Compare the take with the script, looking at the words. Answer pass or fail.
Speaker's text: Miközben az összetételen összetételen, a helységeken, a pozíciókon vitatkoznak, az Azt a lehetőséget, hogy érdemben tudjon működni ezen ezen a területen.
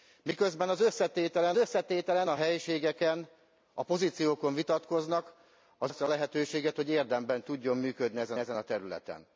pass